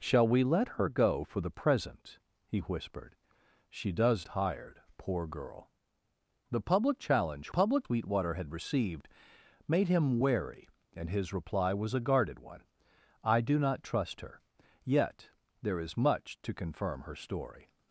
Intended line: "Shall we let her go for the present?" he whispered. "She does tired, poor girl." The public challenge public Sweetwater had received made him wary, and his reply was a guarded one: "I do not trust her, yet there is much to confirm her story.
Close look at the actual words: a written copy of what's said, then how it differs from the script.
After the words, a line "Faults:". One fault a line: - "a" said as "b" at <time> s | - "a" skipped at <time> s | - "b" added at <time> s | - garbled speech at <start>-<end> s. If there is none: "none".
"Shall we let her go for the present?" he whispered. "She does tired, poor girl." The public challenge public Sweetwater had received made him wary, and his reply was a guarded one: "I do not trust her, yet there is much to confirm her story.
Faults:
none